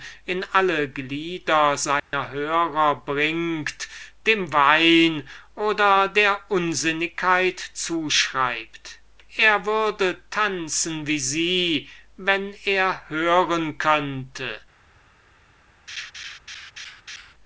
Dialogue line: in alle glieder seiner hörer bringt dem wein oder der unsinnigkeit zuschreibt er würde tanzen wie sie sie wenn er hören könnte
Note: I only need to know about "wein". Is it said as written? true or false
true